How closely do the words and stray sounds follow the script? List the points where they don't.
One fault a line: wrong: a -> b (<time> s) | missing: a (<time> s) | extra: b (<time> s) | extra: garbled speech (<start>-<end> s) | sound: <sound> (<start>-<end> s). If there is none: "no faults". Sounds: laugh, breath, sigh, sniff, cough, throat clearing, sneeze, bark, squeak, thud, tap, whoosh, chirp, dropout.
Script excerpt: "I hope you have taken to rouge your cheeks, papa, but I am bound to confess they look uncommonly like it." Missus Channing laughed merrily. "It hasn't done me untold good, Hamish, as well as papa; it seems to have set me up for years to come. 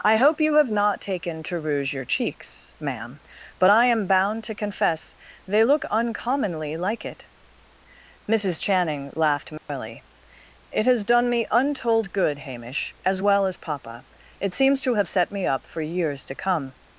extra: not (0.7 s)
wrong: papa -> ma'am (2.8 s)
sound: dropout (9.6-9.7 s)
wrong: hasn't -> has (10.9 s)